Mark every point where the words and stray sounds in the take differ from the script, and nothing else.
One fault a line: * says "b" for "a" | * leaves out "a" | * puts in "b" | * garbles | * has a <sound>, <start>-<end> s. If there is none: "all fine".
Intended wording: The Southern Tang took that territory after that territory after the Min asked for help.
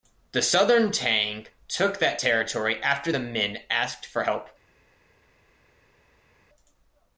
* leaves out "that territory after"